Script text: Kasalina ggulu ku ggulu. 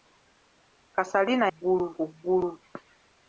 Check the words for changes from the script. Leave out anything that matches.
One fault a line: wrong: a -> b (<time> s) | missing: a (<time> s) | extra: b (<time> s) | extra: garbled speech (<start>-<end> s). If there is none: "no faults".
no faults